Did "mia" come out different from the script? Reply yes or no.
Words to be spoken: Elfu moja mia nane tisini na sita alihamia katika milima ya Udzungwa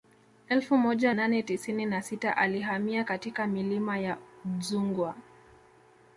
yes